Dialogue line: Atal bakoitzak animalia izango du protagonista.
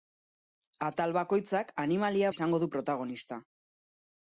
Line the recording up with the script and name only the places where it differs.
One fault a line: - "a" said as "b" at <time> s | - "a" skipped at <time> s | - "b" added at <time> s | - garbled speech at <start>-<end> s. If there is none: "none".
none